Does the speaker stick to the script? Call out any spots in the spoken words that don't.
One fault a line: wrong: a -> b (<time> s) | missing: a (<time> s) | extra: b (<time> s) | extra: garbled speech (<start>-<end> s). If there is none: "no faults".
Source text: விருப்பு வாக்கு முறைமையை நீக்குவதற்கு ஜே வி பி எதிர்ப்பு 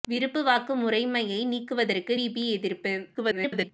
missing: ஜே (2.1 s)
extra: garbled speech (3.1-3.7 s)